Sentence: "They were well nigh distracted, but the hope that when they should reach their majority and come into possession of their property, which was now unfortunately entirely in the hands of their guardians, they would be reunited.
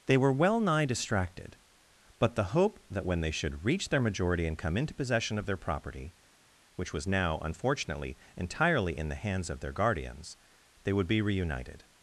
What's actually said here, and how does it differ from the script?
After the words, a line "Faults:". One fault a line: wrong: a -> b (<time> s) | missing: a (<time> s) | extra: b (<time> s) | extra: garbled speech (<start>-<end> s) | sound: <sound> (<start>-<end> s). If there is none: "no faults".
"They were well nigh distracted, but the hope that when they should reach their majority and come into possession of their property, which was now unfortunately entirely in the hands of their guardians, they would be reunited.
Faults:
no faults